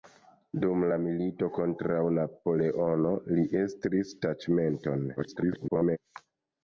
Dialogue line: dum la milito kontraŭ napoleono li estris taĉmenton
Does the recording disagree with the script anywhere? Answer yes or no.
yes